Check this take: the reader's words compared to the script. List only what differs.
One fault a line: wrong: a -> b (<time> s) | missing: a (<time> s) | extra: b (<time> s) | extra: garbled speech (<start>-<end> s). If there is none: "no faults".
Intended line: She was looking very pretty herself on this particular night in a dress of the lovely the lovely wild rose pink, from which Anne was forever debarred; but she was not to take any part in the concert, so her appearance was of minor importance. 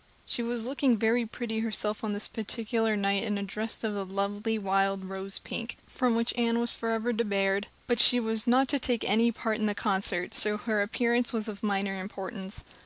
missing: the lovely (4.6 s)